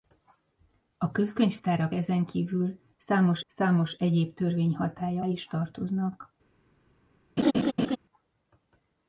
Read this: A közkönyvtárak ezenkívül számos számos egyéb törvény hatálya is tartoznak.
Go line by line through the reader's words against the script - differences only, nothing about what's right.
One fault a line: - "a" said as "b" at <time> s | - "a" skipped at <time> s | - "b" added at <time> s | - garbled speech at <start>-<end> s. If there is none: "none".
none